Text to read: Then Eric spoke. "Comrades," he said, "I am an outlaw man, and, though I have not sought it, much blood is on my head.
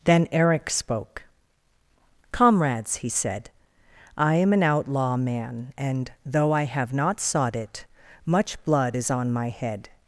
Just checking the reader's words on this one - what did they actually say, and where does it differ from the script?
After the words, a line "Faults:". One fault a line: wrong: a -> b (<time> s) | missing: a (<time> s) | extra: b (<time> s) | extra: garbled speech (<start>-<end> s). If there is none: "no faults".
Then Eric spoke. "Comrades," he said, "I am an outlaw man, and, though I have not sought it, much blood is on my head.
Faults:
no faults